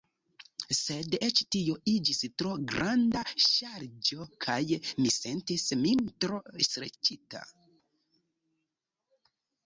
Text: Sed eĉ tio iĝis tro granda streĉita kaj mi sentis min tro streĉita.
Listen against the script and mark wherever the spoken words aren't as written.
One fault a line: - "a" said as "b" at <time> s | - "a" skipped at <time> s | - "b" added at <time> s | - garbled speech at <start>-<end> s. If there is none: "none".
- "streĉita" said as "ŝarĝo" at 3.4 s